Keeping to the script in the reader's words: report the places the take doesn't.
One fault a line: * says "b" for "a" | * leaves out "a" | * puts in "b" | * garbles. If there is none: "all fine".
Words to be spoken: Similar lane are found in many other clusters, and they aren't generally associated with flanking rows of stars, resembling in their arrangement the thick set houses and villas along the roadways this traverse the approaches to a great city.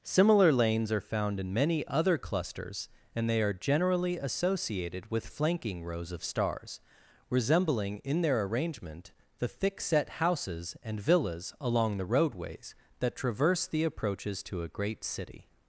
* says "lanes" for "lane"
* says "are" for "aren't"
* says "that" for "this"